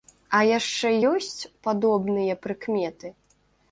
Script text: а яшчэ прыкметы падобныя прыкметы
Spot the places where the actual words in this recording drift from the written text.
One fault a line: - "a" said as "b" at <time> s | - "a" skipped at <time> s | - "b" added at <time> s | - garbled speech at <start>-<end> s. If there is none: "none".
- "прыкметы" said as "ёсць" at 1.1 s